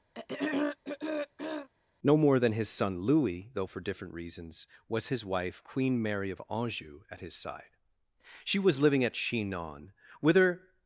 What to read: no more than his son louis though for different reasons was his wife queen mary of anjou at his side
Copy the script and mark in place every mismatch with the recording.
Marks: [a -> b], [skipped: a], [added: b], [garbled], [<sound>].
[throat clearing] no more than his son louis though for different reasons was his wife queen mary of anjou at his side [added: she was living at chinon whither]